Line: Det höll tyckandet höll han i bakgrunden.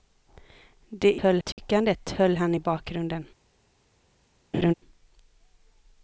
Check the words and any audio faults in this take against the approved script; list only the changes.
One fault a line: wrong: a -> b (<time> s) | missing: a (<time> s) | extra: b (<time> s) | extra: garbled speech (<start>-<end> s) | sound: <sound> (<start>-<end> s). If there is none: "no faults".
sound: dropout (1.5-1.6 s)
sound: laugh (4.5-4.7 s)